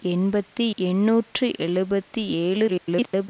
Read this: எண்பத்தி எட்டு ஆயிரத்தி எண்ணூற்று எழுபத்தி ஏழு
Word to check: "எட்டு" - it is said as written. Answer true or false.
false